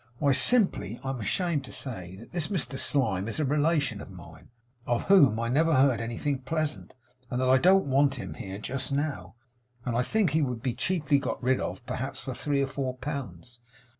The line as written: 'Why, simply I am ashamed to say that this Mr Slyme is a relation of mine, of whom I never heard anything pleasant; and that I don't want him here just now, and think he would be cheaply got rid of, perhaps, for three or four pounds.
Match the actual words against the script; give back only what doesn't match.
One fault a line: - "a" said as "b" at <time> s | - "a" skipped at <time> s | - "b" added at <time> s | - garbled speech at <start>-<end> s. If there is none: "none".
none